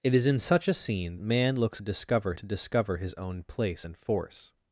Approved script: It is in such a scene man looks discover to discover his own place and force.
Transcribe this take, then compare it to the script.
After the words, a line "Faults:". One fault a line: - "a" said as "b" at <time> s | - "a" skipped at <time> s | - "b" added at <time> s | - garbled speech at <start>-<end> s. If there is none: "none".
It is in such a scene man looks discover to discover his own place and force.
Faults:
none